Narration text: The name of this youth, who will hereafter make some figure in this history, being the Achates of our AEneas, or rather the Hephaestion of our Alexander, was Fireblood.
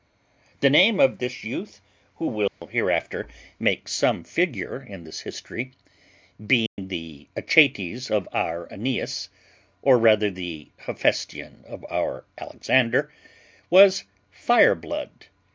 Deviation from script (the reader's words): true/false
false